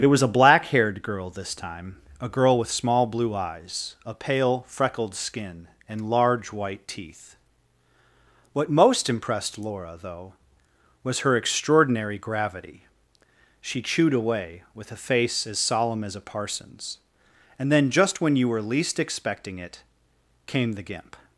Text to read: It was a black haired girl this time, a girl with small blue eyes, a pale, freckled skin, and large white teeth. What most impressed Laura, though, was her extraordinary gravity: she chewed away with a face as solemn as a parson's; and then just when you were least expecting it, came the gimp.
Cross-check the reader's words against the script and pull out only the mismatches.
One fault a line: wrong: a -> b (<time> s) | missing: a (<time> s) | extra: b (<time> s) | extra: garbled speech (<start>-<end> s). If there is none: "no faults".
no faults